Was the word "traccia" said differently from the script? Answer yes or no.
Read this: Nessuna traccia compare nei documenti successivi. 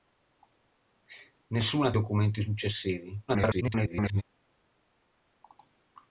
yes